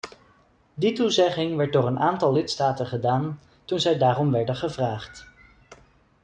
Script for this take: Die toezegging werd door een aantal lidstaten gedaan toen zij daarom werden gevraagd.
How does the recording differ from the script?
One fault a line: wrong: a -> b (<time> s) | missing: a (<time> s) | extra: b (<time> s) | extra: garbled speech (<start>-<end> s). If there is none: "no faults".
no faults